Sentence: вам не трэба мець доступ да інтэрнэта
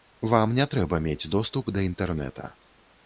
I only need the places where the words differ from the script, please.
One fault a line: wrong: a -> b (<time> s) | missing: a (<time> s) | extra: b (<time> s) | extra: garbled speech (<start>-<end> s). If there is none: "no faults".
no faults